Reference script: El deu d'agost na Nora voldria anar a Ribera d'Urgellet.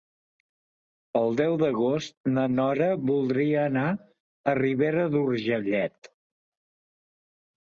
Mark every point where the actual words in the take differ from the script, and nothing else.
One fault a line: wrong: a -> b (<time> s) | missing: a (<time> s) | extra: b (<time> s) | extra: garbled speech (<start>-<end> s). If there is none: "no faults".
no faults